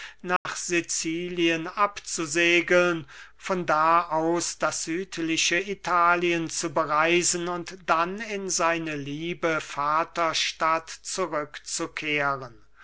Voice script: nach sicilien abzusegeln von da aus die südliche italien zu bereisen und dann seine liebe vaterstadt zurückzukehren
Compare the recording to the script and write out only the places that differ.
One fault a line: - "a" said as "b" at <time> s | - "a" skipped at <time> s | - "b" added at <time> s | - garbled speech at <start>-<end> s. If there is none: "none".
- "die" said as "das" at 4.6 s
- "in" added at 8.2 s